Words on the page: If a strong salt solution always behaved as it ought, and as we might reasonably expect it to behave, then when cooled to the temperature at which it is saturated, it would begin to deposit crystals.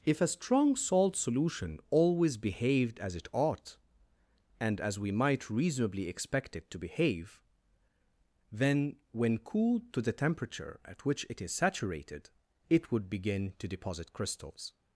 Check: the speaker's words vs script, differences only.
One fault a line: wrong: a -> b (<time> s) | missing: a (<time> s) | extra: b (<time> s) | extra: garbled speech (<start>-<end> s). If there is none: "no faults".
no faults